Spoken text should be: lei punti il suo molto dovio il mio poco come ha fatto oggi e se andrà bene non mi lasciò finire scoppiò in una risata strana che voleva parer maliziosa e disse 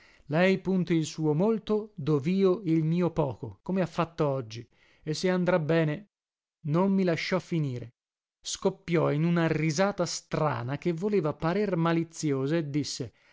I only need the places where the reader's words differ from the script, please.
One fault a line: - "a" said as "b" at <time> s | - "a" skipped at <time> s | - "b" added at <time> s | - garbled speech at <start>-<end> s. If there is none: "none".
none